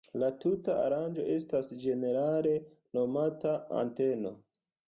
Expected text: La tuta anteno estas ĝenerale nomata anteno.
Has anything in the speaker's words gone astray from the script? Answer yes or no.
yes